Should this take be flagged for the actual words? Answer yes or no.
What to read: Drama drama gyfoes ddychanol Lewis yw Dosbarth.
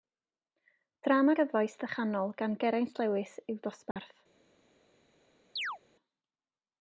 yes